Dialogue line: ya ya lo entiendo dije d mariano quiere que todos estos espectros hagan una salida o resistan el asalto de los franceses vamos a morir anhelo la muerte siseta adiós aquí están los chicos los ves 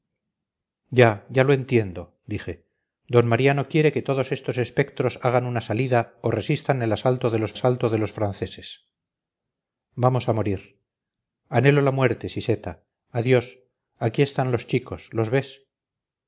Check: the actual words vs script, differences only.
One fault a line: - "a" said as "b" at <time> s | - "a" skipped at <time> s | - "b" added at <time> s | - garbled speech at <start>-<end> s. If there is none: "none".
- "asalto de los" added at 7.5 s